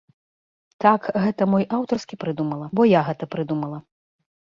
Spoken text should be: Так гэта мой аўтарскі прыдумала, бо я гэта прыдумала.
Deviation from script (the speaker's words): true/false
false